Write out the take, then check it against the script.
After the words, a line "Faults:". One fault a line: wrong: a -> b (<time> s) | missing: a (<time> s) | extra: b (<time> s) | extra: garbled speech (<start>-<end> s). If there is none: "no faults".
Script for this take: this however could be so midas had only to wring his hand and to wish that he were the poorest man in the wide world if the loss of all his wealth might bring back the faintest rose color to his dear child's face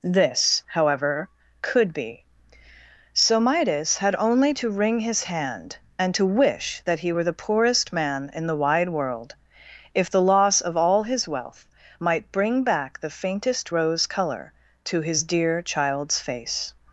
this however could be so midas had only to wring his hand and to wish that he were the poorest man in the wide world if the loss of all his wealth might bring back the faintest rose color to his dear child's face
Faults:
no faults